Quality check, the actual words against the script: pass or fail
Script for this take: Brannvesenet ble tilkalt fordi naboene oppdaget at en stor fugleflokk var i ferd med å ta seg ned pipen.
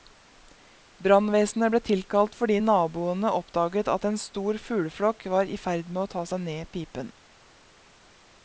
pass